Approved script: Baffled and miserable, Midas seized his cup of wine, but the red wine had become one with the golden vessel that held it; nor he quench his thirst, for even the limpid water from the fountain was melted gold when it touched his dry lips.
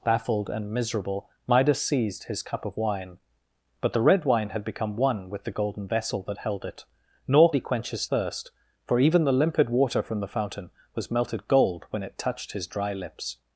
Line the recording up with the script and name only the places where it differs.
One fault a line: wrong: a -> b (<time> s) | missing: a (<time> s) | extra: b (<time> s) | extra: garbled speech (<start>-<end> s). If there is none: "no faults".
no faults